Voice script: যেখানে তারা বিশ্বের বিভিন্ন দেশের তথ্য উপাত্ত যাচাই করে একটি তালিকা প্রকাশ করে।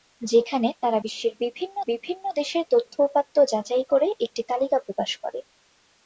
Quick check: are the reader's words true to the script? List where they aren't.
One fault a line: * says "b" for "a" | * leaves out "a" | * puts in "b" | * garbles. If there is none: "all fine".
* puts in "বিভিন্ন"